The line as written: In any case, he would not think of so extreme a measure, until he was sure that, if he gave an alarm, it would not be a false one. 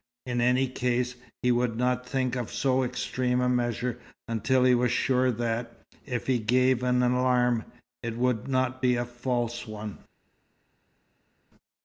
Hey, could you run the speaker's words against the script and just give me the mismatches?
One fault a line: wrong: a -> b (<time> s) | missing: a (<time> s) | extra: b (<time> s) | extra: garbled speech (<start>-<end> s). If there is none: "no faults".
no faults